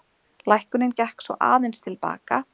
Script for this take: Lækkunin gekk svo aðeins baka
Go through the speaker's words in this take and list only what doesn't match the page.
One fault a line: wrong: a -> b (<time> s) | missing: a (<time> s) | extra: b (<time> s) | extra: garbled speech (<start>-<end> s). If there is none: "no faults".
extra: til (1.9 s)